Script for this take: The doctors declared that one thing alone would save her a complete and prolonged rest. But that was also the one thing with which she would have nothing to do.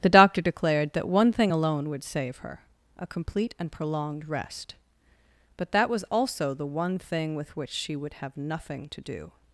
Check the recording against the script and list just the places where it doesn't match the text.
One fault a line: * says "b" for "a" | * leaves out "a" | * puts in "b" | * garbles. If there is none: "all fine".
* says "doctor" for "doctors"